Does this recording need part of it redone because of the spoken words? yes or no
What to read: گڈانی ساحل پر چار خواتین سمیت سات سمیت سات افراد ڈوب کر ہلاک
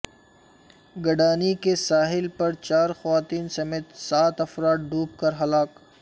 yes